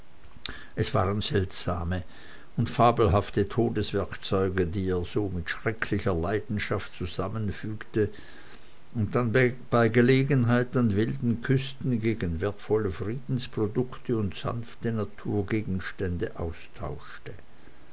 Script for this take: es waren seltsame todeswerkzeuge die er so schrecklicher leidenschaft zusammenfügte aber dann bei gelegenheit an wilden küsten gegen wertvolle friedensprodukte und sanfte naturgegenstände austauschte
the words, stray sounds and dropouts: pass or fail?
fail